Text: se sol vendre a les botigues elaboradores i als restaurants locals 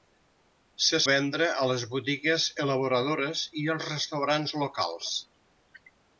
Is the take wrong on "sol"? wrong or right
wrong